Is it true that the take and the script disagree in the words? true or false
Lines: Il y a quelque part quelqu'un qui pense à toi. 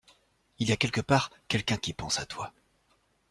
false